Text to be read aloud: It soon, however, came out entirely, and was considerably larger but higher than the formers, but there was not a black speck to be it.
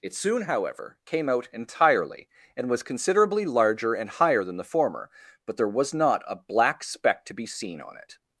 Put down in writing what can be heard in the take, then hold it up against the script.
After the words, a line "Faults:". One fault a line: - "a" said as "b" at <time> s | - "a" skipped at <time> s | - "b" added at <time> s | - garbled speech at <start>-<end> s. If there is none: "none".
It soon, however, came out entirely, and was considerably larger and higher than the former, but there was not a black speck to be seen on it.
Faults:
- "but" said as "and" at 3.9 s
- "formers" said as "former" at 4.6 s
- "seen on" added at 7.5 s